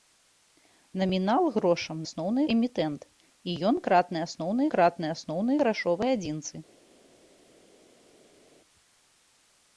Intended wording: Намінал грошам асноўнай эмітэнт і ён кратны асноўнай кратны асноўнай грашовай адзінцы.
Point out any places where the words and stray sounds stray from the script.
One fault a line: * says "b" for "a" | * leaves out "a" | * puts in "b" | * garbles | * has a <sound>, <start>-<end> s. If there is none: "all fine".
all fine